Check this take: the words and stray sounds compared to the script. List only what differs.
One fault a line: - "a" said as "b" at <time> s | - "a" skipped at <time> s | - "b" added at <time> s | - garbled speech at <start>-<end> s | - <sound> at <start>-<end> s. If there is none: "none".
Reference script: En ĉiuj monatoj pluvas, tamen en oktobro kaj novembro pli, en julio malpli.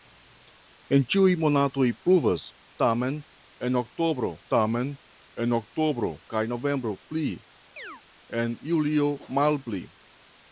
- "tamen en oktobro" added at 4.5 s
- chirp at 7.8-8.0 s